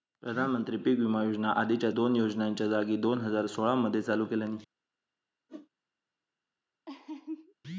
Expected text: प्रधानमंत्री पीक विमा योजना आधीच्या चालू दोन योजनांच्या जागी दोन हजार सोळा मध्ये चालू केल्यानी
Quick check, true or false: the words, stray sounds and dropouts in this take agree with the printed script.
false